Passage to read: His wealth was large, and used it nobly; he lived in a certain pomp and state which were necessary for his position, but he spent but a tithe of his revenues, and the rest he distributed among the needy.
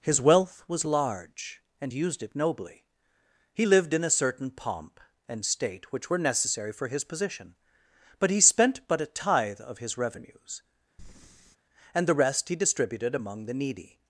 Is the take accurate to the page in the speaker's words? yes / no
yes